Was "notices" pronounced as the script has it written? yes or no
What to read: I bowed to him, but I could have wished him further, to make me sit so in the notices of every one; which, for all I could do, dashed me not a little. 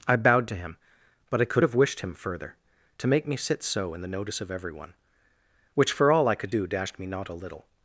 no